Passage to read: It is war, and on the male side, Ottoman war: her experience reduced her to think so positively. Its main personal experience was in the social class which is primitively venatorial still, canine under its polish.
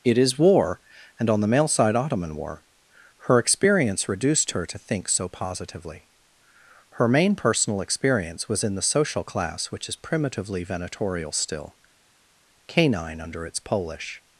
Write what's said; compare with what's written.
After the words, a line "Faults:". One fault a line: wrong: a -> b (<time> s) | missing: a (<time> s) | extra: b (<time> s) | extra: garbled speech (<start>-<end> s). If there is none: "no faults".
It is war, and on the male side, Ottoman war: her experience reduced her to think so positively. Her main personal experience was in the social class which is primitively venatorial still, canine under its polish.
Faults:
wrong: Its -> Her (6.9 s)